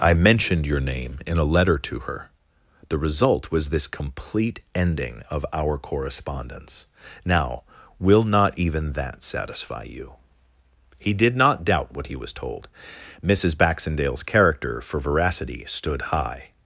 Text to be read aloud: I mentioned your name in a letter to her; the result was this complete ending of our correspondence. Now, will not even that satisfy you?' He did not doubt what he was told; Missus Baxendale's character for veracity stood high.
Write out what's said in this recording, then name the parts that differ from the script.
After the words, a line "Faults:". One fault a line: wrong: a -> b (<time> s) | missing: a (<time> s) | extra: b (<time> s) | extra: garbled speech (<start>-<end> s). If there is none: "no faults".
I mentioned your name in a letter to her; the result was this complete ending of our correspondence. Now, will not even that satisfy you?' He did not doubt what he was told; Missus Baxendale's character for veracity stood high.
Faults:
no faults